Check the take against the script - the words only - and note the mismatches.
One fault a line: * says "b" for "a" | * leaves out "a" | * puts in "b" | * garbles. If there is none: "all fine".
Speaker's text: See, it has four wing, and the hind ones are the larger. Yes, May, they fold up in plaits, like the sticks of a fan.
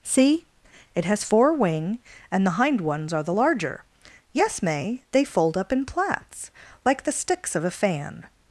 all fine